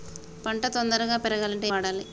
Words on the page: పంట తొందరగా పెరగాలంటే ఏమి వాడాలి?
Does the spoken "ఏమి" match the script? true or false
false